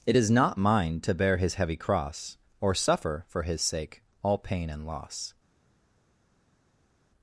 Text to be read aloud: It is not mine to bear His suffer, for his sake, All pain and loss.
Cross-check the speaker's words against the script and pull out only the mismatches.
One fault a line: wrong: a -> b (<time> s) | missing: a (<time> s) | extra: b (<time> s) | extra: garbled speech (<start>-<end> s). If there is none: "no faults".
extra: heavy cross Or (1.5 s)